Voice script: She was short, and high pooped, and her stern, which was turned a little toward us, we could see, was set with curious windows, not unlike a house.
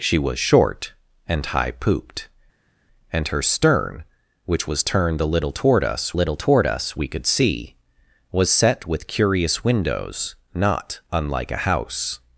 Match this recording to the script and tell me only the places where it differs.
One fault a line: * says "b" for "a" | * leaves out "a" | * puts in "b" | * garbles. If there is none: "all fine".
* puts in "little toward us"